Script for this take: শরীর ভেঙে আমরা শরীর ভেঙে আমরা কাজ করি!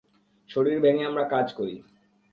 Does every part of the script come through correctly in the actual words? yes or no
no